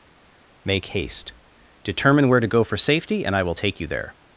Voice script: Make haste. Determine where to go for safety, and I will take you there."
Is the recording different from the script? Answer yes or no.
no